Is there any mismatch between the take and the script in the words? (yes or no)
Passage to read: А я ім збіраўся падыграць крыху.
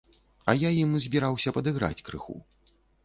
no